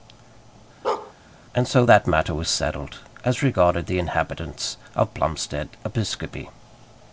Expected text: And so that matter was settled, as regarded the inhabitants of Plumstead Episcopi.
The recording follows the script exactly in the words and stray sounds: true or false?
false